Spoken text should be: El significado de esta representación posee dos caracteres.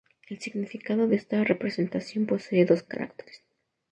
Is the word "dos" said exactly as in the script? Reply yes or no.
yes